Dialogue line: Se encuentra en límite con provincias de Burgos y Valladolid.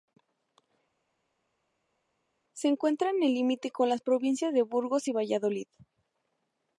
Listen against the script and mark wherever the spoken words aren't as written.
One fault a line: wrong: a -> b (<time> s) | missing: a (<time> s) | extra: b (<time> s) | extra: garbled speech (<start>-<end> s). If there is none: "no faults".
extra: el (3.2 s)
extra: las (3.9 s)